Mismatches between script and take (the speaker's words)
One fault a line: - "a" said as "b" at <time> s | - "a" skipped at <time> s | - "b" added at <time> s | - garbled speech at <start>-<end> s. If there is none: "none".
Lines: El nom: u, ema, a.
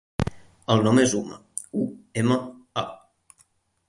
- "és Uma" added at 1.0 s